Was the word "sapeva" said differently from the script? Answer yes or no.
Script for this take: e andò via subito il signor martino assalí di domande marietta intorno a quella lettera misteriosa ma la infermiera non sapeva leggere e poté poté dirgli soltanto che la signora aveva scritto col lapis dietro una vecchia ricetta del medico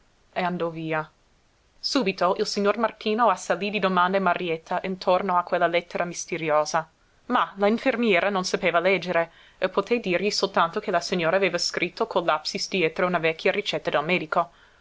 no